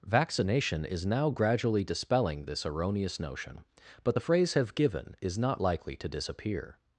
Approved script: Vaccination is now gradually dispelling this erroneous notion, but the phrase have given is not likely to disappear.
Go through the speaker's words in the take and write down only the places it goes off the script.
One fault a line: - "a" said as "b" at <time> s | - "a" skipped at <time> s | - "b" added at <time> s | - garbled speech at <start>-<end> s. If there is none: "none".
none